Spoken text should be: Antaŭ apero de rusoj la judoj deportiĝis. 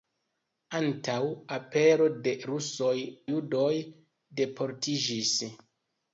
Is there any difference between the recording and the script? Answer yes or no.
yes